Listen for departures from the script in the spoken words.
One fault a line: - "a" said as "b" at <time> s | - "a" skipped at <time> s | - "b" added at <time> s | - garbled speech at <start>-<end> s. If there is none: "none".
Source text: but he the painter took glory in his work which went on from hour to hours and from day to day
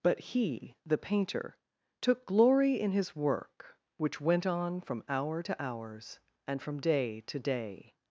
none